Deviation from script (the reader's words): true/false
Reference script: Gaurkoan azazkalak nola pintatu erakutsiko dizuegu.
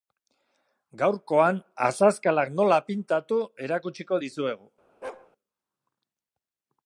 false